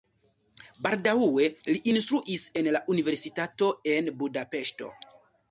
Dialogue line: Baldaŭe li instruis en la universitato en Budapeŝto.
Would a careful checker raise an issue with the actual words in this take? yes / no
no